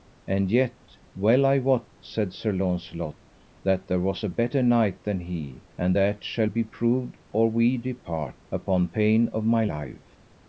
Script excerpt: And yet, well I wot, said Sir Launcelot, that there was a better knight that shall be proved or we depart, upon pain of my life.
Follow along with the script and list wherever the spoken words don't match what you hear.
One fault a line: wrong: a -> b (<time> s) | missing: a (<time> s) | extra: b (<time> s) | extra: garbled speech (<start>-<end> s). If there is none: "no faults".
extra: than he and (5.0 s)